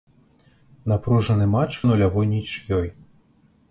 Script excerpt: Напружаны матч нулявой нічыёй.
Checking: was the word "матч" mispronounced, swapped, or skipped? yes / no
no